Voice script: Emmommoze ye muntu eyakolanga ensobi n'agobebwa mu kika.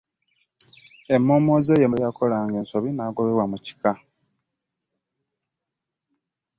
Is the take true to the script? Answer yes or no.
no